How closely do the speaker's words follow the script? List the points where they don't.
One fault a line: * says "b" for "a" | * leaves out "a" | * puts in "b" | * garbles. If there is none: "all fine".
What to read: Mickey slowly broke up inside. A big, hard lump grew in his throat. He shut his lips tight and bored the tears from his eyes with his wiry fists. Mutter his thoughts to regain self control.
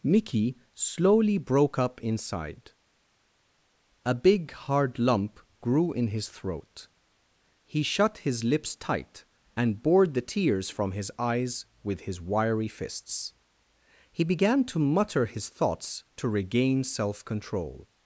* puts in "He began to"